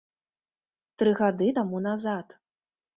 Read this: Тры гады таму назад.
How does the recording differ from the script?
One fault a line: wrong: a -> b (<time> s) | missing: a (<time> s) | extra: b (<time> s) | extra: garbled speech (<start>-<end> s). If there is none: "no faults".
no faults